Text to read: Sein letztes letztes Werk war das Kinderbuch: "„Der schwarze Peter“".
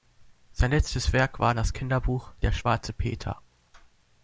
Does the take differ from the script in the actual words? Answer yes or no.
yes